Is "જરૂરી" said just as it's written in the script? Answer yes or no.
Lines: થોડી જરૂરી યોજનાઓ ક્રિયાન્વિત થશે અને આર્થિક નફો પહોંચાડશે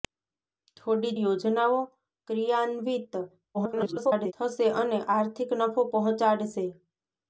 no